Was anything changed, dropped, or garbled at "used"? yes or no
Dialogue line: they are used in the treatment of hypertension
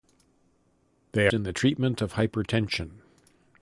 yes